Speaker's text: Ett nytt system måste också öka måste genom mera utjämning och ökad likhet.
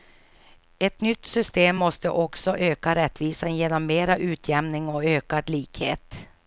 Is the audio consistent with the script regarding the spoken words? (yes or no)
no